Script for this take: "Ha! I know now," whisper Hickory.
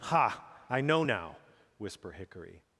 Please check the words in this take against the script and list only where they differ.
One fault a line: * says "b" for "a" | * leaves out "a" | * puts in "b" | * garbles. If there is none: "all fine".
all fine